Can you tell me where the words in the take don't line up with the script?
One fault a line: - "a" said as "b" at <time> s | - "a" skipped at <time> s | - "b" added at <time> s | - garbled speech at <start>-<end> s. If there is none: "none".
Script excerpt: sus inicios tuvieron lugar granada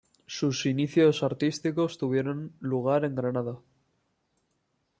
- "artísticos" added at 1.2 s
- "en" added at 3.0 s